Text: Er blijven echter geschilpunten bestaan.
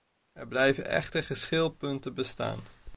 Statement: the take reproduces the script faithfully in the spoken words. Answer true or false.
true